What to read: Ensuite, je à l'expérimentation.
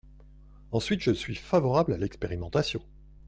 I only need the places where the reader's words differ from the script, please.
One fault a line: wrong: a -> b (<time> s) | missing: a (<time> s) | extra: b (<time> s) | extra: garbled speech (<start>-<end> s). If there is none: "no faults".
extra: suis favorable (1.1 s)